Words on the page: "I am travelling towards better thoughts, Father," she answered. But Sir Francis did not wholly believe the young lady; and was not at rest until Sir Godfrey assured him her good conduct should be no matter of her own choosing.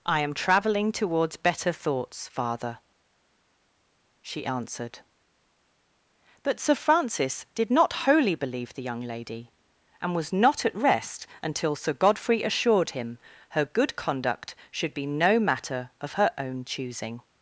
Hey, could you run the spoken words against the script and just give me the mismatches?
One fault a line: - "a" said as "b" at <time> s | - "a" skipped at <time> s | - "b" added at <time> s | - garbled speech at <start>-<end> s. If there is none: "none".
none